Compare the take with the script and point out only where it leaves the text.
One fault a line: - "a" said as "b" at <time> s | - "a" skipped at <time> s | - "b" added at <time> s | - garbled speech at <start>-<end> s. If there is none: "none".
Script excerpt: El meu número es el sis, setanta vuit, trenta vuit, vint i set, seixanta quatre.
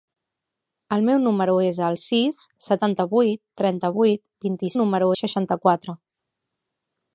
- "set" said as "número" at 4.8 s